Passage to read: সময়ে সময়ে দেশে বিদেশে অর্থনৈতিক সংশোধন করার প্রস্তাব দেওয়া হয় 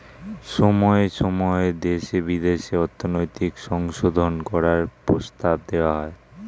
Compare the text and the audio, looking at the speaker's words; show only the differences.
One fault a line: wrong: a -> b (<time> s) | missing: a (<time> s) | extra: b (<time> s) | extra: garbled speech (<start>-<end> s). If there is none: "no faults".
no faults